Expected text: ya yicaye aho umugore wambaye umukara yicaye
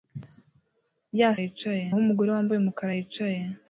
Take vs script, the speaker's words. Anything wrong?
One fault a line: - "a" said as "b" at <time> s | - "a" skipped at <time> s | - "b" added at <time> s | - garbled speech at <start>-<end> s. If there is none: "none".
none